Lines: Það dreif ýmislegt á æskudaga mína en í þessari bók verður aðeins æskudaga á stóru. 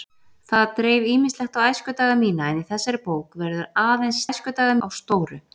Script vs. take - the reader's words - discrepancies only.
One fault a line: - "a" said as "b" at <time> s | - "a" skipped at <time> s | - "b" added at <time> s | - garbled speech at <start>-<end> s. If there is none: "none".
none